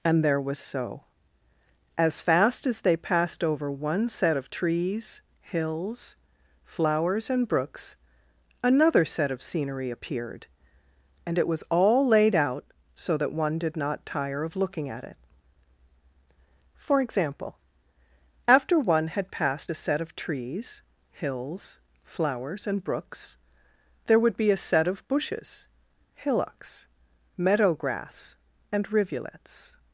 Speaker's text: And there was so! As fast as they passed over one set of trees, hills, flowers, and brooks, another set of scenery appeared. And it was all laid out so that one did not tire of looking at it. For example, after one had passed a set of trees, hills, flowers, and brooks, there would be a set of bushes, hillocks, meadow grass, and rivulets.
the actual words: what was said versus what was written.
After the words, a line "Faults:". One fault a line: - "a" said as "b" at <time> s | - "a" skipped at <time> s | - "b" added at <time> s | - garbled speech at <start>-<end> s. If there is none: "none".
And there was so! As fast as they passed over one set of trees, hills, flowers, and brooks, another set of scenery appeared. And it was all laid out so that one did not tire of looking at it. For example, after one had passed a set of trees, hills, flowers, and brooks, there would be a set of bushes, hillocks, meadow grass, and rivulets.
Faults:
none